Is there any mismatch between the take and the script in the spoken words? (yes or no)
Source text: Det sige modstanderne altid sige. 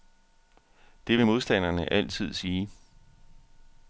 yes